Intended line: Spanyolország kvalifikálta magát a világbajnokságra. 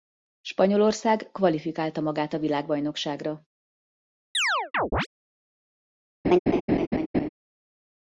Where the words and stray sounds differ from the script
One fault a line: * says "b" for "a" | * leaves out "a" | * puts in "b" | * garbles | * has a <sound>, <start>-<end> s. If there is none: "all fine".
* has a chirp, 4.3-5.1 s
* has a laugh, 6.2-7.3 s